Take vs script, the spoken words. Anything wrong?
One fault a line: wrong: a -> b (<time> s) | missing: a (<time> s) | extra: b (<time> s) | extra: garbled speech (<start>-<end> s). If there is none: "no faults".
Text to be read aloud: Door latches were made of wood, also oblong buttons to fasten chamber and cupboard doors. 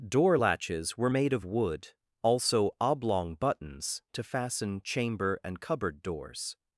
no faults